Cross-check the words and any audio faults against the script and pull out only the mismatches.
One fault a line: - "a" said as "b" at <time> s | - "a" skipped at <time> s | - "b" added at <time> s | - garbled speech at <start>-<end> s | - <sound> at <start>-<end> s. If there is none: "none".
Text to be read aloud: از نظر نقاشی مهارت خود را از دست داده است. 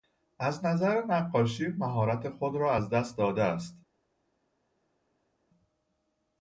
none